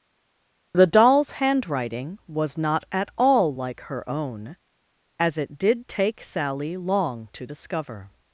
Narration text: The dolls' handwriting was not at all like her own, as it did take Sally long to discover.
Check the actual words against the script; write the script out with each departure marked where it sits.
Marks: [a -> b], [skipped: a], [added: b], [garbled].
The dolls' handwriting was not at all like her own, as it did take Sally long to discover.